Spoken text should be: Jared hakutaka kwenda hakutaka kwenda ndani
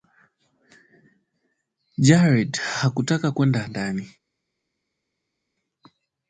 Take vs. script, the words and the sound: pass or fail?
fail